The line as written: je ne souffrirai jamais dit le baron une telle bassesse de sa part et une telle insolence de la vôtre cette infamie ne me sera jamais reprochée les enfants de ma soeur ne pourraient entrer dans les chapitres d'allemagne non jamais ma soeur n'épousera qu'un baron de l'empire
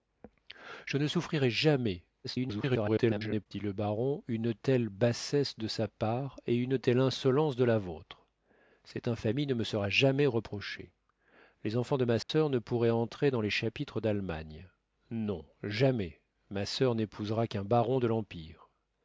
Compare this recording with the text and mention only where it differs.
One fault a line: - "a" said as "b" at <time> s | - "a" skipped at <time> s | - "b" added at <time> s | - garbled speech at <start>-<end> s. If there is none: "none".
- garbled speech at 2.2-3.5 s